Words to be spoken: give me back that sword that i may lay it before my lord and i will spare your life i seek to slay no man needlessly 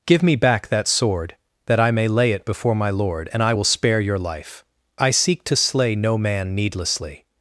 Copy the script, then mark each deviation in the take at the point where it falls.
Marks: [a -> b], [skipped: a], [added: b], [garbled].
give me back that sword that i may lay it before my lord and i will spare your life i seek to slay no man needlessly